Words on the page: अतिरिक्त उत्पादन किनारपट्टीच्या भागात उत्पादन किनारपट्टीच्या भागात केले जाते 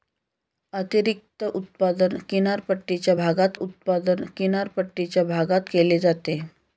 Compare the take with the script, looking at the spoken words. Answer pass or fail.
pass